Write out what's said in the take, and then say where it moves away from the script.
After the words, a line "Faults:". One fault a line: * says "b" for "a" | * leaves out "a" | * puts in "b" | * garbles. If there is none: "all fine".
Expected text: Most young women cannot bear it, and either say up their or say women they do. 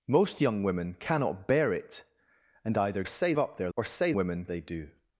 Most young women cannot bear it, and either say up their or say women they do.
Faults:
all fine